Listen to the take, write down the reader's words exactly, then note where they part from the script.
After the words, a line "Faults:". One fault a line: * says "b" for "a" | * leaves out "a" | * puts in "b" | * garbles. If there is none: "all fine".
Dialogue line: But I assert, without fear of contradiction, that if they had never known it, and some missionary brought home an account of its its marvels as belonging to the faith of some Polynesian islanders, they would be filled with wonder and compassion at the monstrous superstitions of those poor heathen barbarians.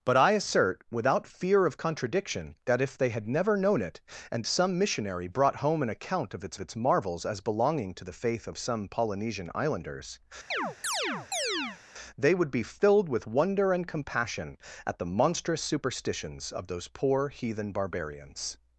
But I assert, without fear of contradiction, that if they had never known it, and some missionary brought home an account of its its marvels as belonging to the faith of some Polynesian islanders, they would be filled with wonder and compassion at the monstrous superstitions of those poor heathen barbarians.
Faults:
all fine